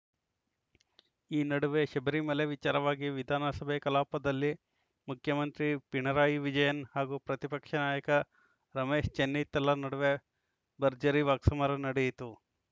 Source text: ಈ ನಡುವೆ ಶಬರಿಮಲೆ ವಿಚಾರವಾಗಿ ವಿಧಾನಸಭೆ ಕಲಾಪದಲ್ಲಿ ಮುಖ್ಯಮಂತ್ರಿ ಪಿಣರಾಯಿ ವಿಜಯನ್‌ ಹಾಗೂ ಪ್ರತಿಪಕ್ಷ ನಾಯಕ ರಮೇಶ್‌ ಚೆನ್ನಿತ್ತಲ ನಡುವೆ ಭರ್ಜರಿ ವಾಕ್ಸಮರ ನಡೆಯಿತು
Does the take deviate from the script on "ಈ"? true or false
false